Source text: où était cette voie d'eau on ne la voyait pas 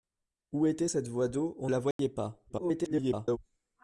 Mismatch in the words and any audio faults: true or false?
true